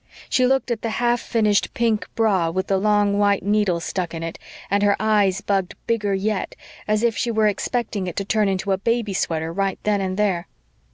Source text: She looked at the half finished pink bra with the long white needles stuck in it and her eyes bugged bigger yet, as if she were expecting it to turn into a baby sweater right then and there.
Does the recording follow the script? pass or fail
pass